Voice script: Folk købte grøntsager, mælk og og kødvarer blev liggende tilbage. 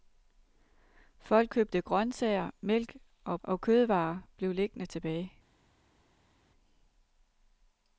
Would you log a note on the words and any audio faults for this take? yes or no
no